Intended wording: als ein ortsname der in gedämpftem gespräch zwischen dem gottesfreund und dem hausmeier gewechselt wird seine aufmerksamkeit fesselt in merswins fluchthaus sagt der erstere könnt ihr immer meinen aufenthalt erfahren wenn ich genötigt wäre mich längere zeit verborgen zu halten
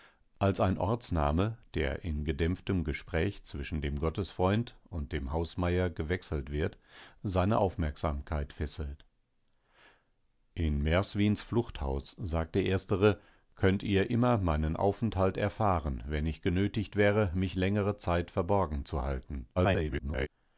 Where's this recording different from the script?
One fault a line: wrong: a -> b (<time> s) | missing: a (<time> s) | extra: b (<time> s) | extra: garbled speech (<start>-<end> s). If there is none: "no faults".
extra: garbled speech (19.6-20.3 s)